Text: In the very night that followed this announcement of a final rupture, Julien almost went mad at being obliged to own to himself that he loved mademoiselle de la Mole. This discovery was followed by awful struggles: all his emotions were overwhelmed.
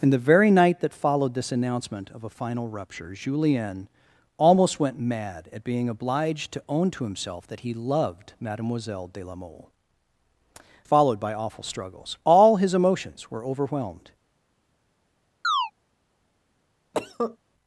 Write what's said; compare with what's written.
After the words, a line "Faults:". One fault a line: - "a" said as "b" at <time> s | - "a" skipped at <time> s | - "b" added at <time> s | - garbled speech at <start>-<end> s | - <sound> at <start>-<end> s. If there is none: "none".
In the very night that followed this announcement of a final rupture, Julien almost went mad at being obliged to own to himself that he loved mademoiselle de la Mole. Followed by awful struggles: all his emotions were overwhelmed.
Faults:
- "This discovery was" skipped at 9.7 s
- chirp at 15.4-15.7 s
- cough at 16.9-17.4 s